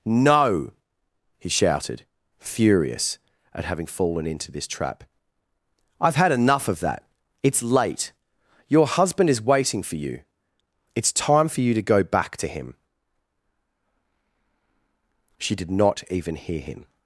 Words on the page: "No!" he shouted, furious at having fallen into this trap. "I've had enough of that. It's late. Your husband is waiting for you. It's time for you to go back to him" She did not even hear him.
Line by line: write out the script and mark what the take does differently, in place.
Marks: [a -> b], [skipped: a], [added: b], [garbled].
"No!" he shouted, furious at having fallen into this trap. "I've had enough of that. It's late. Your husband is waiting for you. It's time for you to go back to him" She did not even hear him.